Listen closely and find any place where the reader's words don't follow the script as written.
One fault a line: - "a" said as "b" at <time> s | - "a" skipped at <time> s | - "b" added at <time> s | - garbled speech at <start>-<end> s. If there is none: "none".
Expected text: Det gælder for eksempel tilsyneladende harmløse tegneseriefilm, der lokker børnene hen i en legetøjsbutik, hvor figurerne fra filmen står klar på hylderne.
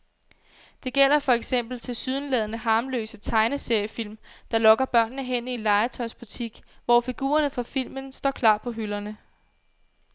none